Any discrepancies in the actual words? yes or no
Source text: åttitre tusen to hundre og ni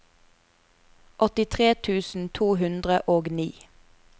no